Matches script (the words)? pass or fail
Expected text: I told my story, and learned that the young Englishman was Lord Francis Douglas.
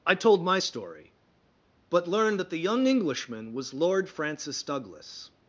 fail